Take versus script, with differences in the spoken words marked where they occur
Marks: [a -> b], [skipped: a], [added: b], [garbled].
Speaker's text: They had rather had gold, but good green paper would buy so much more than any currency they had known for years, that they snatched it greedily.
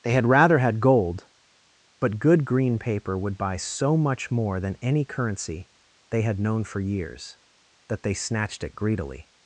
They had rather had gold, but good green paper would buy so much more than any currency they had known for years, that they snatched it greedily.